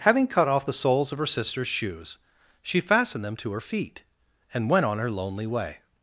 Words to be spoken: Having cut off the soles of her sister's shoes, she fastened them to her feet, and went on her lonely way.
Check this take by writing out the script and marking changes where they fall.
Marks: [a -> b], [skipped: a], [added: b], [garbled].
Having cut off the soles of her sister's shoes, she fastened them to her feet, and went on her lonely way.